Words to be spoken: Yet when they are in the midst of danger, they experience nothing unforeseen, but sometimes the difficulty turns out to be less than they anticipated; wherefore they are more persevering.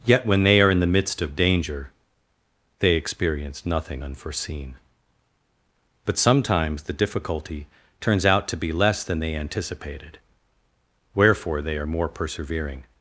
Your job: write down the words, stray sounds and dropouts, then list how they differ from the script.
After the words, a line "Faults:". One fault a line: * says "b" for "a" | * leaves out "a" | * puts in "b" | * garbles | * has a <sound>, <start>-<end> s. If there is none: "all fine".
Yet when they are in the midst of danger, they experience nothing unforeseen, but sometimes the difficulty turns out to be less than they anticipated; wherefore they are more persevering.
Faults:
all fine